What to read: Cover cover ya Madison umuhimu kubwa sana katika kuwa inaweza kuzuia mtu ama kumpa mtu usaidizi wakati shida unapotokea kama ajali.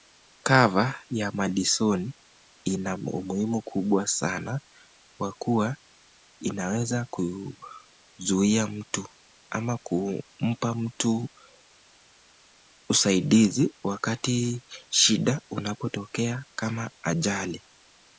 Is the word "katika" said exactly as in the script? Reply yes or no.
no